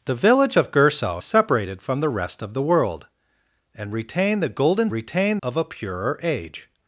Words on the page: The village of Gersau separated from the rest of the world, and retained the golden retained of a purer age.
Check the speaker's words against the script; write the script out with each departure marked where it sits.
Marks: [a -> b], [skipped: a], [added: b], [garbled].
The village of Gersau separated from the rest of the world, and retained the golden retained of a purer age.